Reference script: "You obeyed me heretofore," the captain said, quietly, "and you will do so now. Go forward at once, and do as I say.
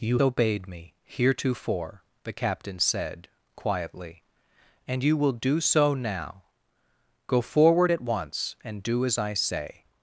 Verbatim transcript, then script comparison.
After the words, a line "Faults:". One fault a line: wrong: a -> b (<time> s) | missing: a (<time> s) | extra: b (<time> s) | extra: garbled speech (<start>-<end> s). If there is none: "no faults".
"You obeyed me heretofore," the captain said, quietly, "and you will do so now. Go forward at once, and do as I say.
Faults:
no faults